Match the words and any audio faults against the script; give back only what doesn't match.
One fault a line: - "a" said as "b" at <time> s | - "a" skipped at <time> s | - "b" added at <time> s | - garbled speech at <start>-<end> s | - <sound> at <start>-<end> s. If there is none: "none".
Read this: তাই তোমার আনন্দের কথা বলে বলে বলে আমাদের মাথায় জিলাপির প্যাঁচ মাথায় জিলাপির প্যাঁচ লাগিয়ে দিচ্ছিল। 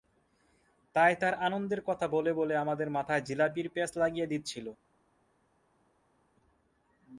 - "তোমার" said as "তার" at 1.1 s
- "বলে" skipped at 2.5 s
- "মাথায় জিলাপির প্যাঁচ" skipped at 3.9 s